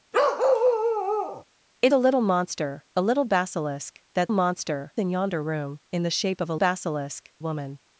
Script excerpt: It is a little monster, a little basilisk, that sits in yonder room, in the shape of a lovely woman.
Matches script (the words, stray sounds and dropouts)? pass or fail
fail